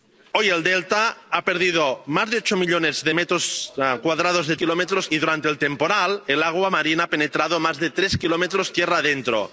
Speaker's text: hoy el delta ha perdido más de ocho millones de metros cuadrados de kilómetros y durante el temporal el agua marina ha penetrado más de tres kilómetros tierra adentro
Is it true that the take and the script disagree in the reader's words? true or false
false